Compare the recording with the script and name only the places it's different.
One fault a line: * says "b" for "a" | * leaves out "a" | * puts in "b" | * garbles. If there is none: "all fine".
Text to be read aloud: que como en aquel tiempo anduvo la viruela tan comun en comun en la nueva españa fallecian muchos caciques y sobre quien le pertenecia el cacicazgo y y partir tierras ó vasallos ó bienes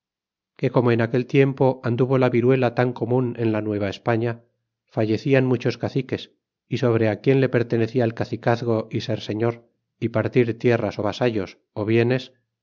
* leaves out "comun en"
* puts in "ser señor"